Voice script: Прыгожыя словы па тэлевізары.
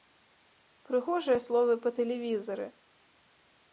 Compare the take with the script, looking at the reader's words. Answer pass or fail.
pass